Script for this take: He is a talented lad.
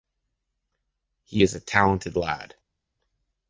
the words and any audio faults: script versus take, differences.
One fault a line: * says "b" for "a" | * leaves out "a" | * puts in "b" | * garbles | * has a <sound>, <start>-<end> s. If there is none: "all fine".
all fine